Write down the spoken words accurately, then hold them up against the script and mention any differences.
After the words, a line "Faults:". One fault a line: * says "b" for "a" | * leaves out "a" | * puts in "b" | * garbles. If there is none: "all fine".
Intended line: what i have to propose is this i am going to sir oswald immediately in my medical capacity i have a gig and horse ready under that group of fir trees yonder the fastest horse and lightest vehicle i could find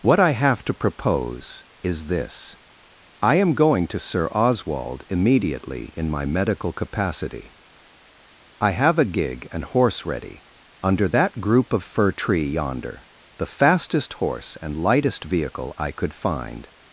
what i have to propose is this i am going to sir oswald immediately in my medical capacity i have a gig and horse ready under that group of fir tree yonder the fastest horse and lightest vehicle i could find
Faults:
* says "tree" for "trees"